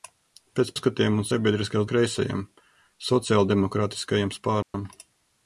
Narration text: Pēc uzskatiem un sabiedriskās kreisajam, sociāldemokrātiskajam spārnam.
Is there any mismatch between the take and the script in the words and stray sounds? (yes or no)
yes